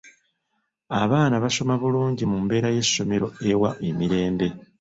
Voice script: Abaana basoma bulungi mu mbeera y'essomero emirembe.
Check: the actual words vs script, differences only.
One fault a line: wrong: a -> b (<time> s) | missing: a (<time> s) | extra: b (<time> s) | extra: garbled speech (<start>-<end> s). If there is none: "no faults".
extra: ewa (3.5 s)